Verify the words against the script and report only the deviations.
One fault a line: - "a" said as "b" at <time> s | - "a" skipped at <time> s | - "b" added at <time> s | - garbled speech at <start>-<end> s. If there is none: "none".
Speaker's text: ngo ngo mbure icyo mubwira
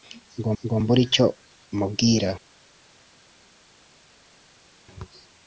none